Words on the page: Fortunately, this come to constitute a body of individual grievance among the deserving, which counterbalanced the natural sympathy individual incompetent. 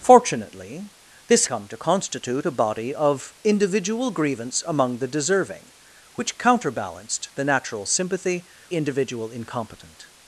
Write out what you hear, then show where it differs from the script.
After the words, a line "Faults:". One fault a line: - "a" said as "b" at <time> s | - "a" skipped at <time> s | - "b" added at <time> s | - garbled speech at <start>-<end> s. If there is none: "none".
Fortunately, this come to constitute a body of individual grievance among the deserving, which counterbalanced the natural sympathy individual incompetent.
Faults:
none